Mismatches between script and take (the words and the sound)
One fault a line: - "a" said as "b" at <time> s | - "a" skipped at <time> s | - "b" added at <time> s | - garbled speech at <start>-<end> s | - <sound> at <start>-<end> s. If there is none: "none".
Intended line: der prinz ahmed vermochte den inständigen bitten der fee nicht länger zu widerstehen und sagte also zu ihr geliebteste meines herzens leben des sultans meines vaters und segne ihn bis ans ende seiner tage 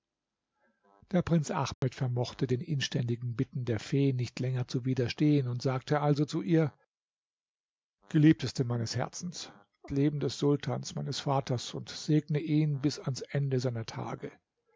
- dropout at 1.7-1.8 s